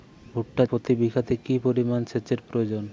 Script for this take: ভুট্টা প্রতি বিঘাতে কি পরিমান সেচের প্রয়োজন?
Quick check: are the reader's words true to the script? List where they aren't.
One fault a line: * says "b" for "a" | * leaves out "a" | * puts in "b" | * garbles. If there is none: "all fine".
all fine